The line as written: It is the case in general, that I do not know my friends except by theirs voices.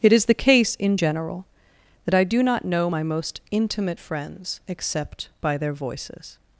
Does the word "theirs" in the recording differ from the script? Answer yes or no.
yes